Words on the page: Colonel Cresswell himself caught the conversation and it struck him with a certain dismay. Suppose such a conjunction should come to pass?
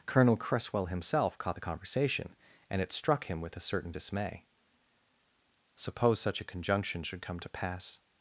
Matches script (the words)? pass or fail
pass